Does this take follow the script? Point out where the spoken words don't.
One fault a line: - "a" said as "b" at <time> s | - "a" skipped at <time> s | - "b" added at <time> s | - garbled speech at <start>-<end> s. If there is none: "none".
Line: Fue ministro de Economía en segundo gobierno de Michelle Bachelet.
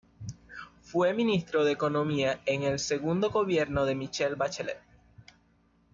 - "el" added at 2.6 s